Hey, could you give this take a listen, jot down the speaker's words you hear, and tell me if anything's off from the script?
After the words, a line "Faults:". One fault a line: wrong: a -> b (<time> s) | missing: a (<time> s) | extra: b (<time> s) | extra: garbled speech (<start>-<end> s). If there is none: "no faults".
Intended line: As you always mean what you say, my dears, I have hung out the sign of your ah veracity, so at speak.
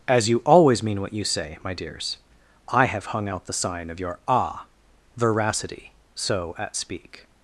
As you always mean what you say, my dears, I have hung out the sign of your ah veracity, so at speak.
Faults:
no faults